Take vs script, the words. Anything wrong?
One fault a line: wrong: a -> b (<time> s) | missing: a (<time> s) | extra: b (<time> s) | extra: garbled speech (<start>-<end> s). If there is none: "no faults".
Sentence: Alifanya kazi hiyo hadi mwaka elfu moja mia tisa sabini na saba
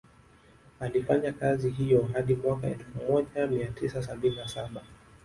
no faults